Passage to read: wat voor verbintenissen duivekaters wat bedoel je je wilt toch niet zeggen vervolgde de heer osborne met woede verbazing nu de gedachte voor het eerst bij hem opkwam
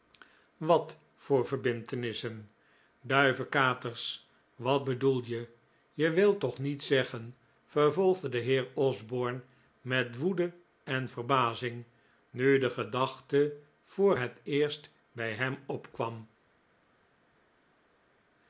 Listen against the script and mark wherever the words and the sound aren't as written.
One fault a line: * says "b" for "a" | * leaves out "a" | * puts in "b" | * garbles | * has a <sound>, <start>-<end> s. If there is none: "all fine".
* puts in "en"